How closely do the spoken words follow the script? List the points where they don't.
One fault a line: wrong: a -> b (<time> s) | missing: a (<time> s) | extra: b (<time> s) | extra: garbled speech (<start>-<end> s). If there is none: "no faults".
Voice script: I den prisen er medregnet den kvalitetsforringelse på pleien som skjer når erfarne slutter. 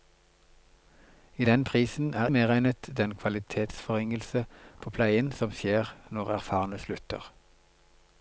no faults